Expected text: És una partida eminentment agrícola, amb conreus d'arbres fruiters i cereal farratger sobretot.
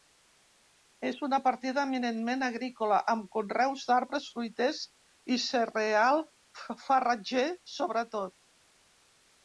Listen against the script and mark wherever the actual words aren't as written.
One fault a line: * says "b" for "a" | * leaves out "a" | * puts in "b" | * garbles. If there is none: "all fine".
all fine